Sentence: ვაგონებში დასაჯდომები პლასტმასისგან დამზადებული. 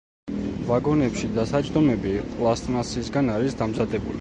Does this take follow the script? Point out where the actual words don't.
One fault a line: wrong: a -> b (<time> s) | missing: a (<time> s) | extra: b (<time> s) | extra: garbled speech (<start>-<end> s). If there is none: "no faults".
extra: არის (3.4 s)